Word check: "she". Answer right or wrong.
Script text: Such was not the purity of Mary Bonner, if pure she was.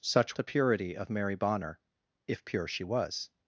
right